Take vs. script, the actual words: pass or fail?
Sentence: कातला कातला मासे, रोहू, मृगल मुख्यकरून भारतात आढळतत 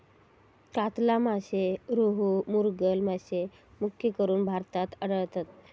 fail